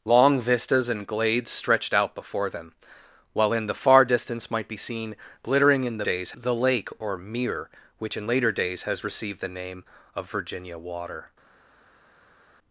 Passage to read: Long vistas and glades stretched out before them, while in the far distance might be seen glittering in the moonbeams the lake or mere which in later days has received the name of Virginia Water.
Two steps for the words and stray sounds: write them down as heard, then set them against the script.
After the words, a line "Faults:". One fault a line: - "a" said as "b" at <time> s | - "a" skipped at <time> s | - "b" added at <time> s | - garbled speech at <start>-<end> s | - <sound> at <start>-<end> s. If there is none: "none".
Long vistas and glades stretched out before them, while in the far distance might be seen glittering in the days the lake or mere which in later days has received the name of Virginia Water.
Faults:
- "moonbeams" said as "days" at 6.0 s